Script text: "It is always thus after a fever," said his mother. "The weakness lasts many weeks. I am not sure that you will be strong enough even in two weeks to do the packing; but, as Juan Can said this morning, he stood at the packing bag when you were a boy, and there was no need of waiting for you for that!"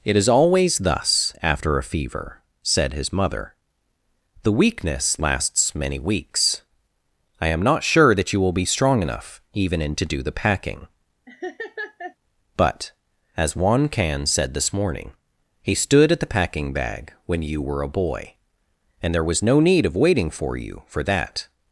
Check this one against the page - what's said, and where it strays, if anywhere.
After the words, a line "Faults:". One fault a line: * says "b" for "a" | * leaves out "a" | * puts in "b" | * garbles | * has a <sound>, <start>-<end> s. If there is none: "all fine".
"It is always thus after a fever," said his mother. "The weakness lasts many weeks. I am not sure that you will be strong enough even in to do the packing; but, as Juan Can said this morning, he stood at the packing bag when you were a boy, and there was no need of waiting for you for that!"
Faults:
* leaves out "two weeks"
* has a laugh, 11.3-12.2 s